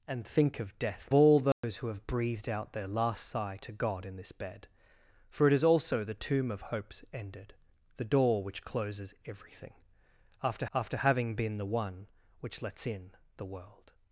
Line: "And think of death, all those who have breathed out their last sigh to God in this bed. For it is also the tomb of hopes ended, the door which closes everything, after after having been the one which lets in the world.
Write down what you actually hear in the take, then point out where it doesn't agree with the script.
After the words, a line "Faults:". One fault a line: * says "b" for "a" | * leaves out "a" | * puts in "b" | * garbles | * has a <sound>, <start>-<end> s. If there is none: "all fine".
"And think of death, all those who have breathed out their last sigh to God in this bed. For it is also the tomb of hopes ended, the door which closes everything, after after having been the one which lets in the world.
Faults:
* has a dropout, 1.5-1.6 s